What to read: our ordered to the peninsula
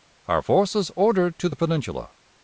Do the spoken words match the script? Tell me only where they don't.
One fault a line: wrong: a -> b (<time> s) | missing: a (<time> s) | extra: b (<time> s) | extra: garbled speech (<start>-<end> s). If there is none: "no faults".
extra: forces (0.4 s)